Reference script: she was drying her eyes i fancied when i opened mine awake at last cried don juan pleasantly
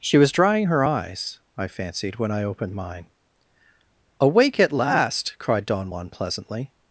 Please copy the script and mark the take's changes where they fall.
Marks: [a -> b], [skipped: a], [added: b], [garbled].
she was drying her eyes i fancied when i opened mine awake at last cried don juan pleasantly